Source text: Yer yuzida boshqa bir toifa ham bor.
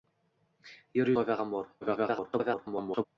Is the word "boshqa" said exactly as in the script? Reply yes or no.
no